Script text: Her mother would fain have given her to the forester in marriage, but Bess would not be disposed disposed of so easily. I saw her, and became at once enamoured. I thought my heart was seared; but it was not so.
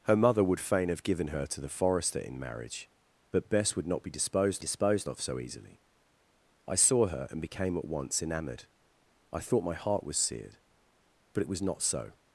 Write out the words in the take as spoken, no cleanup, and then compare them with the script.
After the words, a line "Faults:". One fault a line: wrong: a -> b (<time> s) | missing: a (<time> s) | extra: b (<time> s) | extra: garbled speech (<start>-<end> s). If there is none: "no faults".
Her mother would fain have given her to the forester in marriage, but Bess would not be disposed disposed of so easily. I saw her, and became at once enamoured. I thought my heart was seared; but it was not so.
Faults:
no faults